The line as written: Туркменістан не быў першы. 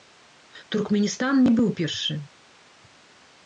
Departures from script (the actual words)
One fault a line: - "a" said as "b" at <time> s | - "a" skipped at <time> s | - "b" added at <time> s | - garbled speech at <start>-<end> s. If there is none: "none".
none